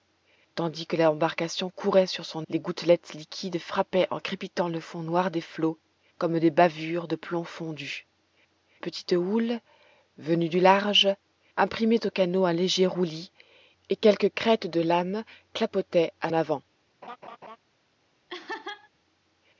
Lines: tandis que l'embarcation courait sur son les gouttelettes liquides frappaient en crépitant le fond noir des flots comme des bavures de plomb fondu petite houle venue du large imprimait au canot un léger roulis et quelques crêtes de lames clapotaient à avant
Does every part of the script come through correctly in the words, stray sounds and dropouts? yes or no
no